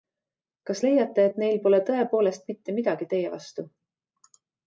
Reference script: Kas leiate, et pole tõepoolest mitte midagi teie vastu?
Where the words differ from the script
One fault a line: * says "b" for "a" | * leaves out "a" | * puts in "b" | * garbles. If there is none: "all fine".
* puts in "neil"